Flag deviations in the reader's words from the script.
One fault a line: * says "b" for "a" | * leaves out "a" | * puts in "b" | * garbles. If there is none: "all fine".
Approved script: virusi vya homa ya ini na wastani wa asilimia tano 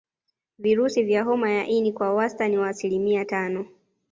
* says "kwa" for "na"